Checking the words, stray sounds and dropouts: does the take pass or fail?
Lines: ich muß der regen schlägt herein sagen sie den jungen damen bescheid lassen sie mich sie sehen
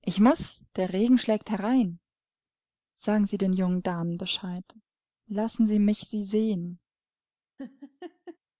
fail